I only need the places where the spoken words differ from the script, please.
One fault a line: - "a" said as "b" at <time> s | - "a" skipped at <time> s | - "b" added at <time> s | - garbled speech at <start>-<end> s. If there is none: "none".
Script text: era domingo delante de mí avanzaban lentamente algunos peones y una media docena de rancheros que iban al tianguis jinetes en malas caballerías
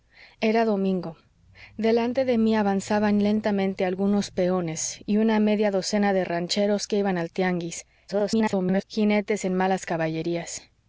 - garbled speech at 8.1-8.8 s